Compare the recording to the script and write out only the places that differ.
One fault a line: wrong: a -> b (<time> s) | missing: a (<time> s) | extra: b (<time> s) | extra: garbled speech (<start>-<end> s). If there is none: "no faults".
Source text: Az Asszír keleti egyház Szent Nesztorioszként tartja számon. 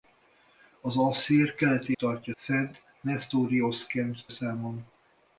wrong: egyház -> tartja (2.0 s)
missing: tartja (4.3 s)